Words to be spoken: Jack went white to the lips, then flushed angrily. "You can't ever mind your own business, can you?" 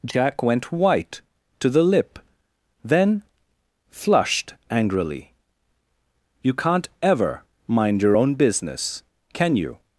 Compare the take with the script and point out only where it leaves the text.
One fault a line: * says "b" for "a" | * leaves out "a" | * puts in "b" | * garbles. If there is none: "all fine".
* says "lip" for "lips"